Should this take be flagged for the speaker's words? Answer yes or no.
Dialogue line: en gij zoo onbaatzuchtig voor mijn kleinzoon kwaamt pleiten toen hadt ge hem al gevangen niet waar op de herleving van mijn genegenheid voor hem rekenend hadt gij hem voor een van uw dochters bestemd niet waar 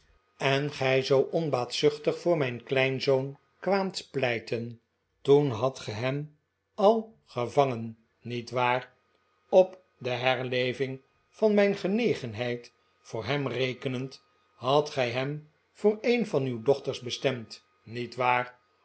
no